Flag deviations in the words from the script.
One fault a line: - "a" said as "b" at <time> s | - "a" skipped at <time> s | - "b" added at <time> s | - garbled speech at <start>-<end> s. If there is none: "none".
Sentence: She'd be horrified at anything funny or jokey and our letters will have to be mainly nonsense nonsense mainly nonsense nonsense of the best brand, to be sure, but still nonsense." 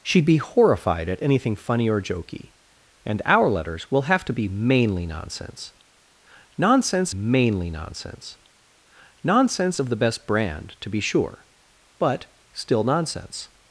none